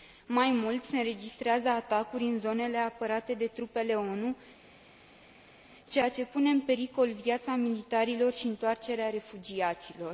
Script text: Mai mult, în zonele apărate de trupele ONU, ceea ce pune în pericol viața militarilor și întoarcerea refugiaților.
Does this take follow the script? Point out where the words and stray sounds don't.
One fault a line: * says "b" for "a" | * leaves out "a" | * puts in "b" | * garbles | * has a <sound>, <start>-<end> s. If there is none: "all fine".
* puts in "se înregistrează atacuri"